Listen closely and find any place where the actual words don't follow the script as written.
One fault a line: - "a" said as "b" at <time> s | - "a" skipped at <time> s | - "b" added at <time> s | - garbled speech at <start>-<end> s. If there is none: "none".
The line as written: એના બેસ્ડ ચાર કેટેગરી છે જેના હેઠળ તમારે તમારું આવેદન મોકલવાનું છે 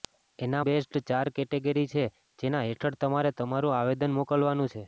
none